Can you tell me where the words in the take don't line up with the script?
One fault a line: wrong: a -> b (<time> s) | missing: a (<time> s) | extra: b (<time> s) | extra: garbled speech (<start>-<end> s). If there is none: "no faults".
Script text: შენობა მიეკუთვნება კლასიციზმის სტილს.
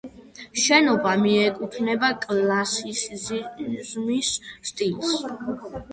no faults